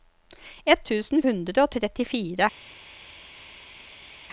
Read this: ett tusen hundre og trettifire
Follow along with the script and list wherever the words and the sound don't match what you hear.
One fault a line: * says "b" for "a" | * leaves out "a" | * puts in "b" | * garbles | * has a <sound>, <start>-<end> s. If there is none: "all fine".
all fine